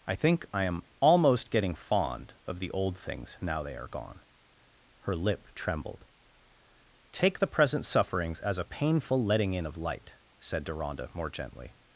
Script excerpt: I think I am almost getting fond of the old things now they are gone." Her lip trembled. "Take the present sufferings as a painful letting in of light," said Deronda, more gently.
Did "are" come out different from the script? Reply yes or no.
no